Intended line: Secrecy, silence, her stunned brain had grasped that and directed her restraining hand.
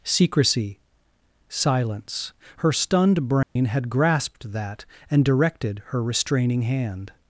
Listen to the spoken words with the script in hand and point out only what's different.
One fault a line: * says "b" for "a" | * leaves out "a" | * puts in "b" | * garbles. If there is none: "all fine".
all fine